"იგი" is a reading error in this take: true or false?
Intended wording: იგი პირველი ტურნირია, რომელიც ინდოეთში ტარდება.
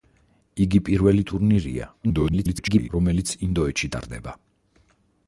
false